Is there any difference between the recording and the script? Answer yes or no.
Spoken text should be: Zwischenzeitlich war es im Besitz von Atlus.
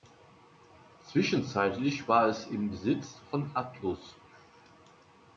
no